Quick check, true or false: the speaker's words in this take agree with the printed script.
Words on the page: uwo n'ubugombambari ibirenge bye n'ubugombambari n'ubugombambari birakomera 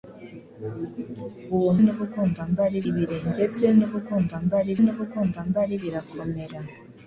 true